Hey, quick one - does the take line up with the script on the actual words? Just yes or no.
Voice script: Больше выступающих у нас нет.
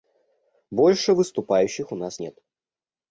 yes